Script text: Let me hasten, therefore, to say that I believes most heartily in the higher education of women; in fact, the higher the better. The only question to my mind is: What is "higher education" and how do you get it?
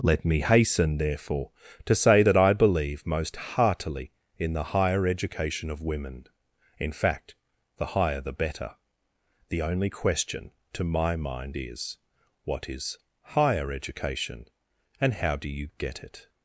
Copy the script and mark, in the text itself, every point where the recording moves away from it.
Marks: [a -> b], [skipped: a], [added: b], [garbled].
Let me hasten, therefore, to say that I [believes -> believe] most heartily in the higher education of women; in fact, the higher the better. The only question to my mind is: What is "higher education" and how do you get it?